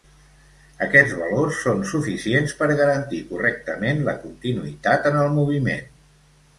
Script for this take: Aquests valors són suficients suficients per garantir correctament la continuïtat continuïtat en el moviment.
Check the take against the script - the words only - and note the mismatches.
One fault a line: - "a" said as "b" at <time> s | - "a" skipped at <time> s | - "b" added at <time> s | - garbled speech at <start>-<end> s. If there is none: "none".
- "suficients" skipped at 2.6 s
- "continuïtat" skipped at 5.1 s